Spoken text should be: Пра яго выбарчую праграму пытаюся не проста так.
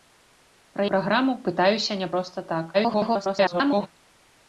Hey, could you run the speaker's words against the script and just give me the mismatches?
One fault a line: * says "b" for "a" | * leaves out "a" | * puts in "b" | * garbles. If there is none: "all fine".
* leaves out "яго выбарчую"
* garbles